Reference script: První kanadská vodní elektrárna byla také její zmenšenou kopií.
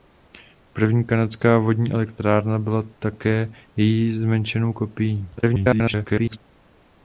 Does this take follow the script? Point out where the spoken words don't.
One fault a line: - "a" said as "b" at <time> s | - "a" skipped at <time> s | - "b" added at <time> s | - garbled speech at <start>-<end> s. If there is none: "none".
- garbled speech at 5.4-6.4 s